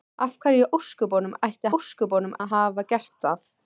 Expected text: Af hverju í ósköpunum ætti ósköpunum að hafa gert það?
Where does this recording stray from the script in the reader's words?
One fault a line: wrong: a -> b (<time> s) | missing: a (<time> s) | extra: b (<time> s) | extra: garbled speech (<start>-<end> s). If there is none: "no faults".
no faults